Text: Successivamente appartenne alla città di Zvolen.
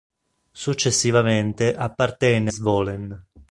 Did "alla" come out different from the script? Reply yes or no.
yes